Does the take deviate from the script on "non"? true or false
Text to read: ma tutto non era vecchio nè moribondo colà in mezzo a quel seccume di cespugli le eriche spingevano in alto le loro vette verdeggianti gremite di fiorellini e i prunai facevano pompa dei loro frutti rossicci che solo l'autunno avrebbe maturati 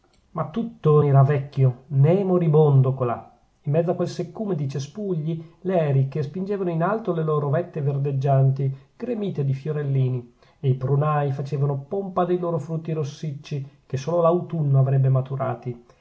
true